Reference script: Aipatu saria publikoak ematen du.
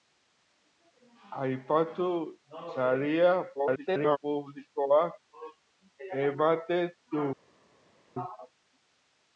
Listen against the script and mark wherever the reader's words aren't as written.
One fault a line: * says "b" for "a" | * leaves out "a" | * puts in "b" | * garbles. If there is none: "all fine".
* garbles